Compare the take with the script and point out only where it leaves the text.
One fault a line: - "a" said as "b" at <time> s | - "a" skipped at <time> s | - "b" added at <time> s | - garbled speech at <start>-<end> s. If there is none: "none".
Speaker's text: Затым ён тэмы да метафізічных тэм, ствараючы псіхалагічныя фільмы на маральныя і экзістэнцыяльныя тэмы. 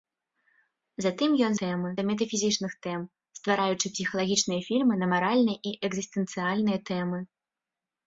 none